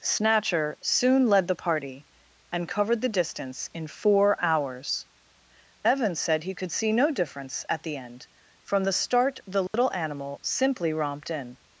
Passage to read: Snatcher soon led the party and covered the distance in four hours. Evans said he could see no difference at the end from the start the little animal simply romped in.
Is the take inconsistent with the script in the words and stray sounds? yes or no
yes